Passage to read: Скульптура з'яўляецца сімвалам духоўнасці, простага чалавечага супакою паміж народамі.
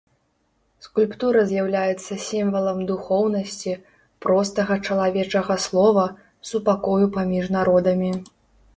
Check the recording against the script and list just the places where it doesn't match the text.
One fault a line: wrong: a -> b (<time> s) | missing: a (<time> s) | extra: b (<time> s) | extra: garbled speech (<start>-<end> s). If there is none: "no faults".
extra: слова (5.7 s)